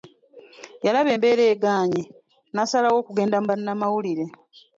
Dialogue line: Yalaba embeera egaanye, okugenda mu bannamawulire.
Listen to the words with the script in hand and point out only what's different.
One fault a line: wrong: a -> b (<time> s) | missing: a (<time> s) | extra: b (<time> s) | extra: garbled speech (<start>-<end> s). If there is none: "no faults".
extra: n'asalawo (2.5 s)